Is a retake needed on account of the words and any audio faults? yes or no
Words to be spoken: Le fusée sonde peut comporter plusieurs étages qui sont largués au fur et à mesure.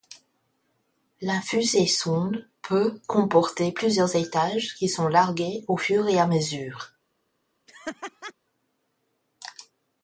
yes